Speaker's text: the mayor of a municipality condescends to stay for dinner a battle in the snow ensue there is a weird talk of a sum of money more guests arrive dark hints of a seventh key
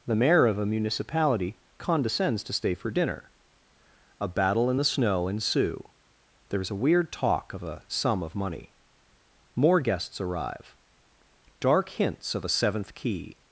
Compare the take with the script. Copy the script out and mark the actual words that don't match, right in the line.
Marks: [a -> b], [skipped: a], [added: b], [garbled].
the mayor of a municipality condescends to stay for dinner a battle in the snow ensue there is a weird talk of a sum of money more guests arrive dark hints of a seventh key